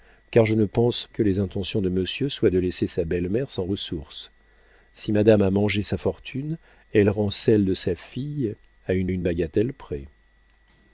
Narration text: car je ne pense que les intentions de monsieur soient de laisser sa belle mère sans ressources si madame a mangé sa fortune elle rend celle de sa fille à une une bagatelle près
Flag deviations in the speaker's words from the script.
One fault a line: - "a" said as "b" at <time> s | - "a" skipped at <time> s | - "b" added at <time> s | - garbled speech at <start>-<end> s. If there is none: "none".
none